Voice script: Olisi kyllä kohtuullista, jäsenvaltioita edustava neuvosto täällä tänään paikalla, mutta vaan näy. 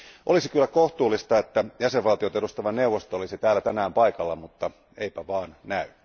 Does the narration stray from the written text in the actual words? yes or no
yes